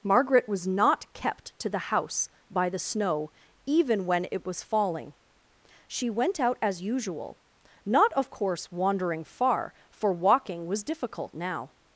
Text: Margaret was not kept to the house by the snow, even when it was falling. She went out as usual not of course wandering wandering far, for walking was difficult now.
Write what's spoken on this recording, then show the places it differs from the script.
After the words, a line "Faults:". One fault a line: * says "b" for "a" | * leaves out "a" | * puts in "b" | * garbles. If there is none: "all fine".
Margaret was not kept to the house by the snow, even when it was falling. She went out as usual not of course wandering far, for walking was difficult now.
Faults:
* leaves out "wandering"